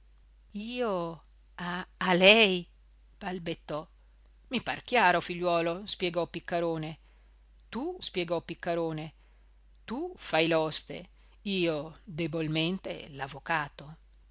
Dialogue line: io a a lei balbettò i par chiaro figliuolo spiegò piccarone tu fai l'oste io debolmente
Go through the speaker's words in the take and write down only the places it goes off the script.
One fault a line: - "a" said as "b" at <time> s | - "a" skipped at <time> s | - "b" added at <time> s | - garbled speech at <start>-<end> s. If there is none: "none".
- "spiegò piccarone tu" added at 8.0 s